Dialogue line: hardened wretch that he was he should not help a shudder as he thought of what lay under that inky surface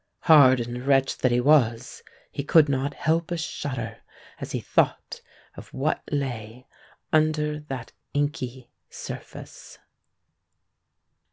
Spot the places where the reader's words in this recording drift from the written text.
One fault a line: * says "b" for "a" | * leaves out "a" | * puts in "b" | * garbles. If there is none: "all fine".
* says "could" for "should"